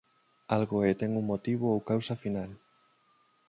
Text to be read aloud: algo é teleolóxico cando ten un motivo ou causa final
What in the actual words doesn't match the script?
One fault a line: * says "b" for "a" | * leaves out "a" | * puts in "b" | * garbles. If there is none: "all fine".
* leaves out "teleolóxico cando"